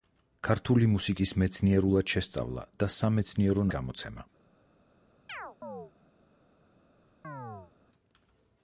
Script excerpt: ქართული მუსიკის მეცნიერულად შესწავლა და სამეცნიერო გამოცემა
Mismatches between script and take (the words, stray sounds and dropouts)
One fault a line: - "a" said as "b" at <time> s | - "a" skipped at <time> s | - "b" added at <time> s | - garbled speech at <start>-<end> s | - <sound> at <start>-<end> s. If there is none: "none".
- chirp at 5.3-5.9 s
- chirp at 7.2-7.7 s